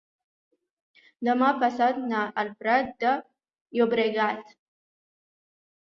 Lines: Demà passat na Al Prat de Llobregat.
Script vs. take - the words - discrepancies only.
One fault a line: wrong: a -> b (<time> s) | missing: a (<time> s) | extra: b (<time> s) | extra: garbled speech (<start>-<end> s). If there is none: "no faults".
no faults